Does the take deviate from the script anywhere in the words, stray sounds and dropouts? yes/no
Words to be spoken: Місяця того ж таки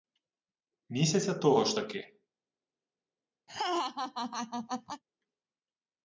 yes